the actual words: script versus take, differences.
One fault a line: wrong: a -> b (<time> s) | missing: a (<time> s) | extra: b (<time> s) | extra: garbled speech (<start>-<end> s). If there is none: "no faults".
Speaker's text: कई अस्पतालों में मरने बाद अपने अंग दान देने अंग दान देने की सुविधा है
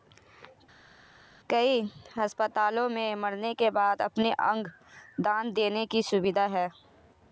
extra: के (3.5 s)
missing: अंग दान देने (5.9 s)